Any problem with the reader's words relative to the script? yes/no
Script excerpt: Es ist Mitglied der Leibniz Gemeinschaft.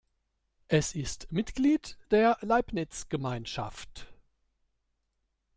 no